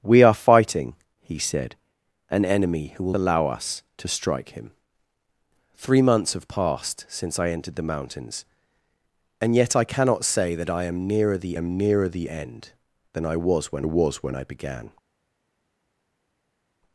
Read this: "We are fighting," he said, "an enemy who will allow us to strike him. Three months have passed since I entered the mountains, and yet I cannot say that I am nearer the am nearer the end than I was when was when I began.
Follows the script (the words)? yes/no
yes